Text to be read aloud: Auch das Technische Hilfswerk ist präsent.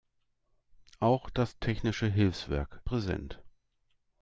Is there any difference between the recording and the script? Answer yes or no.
yes